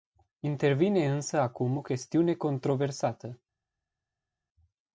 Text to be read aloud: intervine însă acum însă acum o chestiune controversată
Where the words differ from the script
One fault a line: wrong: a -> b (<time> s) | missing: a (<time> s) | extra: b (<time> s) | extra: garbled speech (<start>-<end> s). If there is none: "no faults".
missing: însă acum (1.8 s)